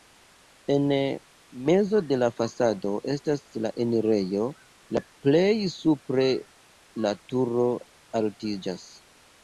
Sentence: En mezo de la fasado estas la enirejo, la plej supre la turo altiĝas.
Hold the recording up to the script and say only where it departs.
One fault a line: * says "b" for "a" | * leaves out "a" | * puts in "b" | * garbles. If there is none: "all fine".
all fine